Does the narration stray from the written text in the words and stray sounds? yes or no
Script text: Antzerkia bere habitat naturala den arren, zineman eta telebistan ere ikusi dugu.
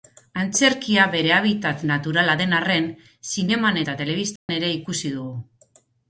yes